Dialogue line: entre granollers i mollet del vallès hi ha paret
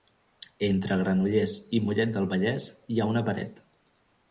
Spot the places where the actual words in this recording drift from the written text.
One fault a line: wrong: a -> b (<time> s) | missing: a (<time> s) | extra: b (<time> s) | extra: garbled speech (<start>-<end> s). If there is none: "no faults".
extra: una (3.1 s)